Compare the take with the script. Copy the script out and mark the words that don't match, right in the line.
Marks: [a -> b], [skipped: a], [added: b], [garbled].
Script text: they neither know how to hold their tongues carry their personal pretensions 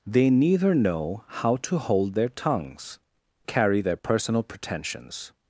they neither know how to hold their tongues carry their personal pretensions